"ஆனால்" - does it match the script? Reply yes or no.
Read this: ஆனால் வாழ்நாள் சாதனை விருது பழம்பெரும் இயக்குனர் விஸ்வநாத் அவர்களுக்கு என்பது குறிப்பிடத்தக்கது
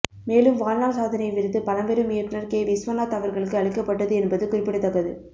no